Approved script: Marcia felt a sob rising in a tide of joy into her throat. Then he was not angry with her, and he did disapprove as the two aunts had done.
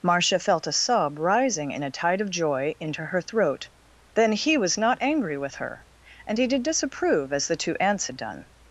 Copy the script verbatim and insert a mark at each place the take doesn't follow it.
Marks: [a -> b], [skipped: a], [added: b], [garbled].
Marcia felt a sob rising in a tide of joy into her throat. Then he was not angry with her, and he did disapprove as the two aunts had done.